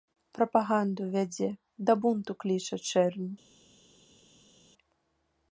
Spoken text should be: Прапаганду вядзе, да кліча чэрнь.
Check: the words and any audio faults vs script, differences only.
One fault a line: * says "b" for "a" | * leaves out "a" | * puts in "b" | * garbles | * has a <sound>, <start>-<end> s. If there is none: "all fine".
* puts in "бунту"